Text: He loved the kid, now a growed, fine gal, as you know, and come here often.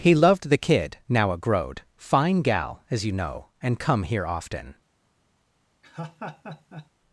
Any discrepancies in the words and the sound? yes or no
yes